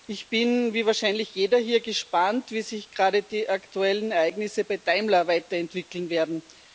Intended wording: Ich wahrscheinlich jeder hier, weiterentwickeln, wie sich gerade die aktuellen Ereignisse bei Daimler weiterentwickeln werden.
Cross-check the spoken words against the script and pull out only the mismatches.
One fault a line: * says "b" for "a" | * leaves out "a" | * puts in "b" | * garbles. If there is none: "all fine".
* puts in "bin wie"
* says "gespannt" for "weiterentwickeln"